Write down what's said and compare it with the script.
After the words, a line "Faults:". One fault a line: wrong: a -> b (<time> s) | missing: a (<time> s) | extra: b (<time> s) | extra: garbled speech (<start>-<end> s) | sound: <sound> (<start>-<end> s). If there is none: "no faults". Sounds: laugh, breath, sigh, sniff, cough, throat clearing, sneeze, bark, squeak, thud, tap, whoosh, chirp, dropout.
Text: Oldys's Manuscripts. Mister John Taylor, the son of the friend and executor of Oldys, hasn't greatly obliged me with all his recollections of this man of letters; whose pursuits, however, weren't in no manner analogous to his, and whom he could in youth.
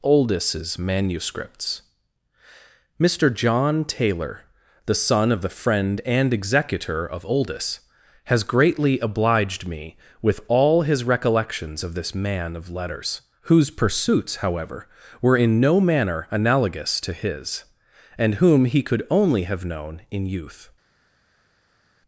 Oldys's Manuscripts. Mister John Taylor, the son of the friend and executor of Oldys, has greatly obliged me with all his recollections of this man of letters; whose pursuits, however, were in no manner analogous to his, and whom he could only have known in youth.
Faults:
wrong: hasn't -> has (8.2 s)
wrong: weren't -> were (15.2 s)
extra: only have known (19.1 s)